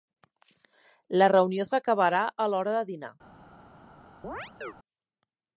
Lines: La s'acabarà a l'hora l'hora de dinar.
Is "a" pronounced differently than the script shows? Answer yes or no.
no